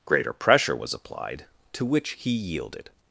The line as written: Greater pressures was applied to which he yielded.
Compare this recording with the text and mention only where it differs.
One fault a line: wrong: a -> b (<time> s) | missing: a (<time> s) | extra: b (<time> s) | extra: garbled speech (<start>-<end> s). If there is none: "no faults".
wrong: pressures -> pressure (0.3 s)